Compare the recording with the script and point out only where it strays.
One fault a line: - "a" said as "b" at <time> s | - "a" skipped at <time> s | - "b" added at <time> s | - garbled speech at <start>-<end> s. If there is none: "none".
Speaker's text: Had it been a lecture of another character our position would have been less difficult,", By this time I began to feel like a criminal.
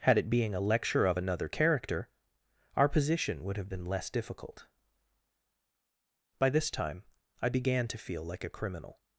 - "been" said as "being" at 0.3 s